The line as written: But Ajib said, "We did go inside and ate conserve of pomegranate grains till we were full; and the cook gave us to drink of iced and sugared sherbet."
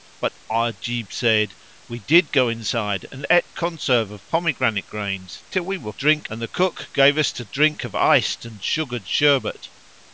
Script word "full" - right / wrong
wrong